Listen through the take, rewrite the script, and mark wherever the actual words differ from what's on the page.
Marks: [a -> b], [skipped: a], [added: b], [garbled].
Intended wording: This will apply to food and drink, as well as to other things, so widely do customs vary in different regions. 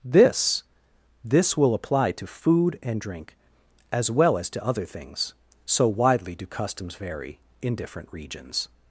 This [added: this] will apply to food and drink, as well as to other things, so widely do customs vary in different regions.